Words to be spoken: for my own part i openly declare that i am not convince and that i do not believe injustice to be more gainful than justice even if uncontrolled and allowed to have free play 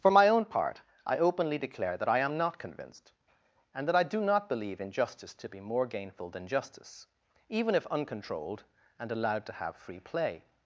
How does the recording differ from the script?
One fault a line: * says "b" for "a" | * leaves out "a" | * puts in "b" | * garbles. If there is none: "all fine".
* says "convinced" for "convince"